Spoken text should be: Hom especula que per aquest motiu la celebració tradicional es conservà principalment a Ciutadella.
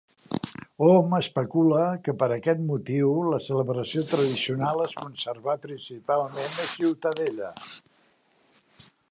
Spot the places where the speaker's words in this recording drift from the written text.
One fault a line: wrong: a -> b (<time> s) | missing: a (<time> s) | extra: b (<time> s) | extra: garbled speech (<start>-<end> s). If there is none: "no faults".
no faults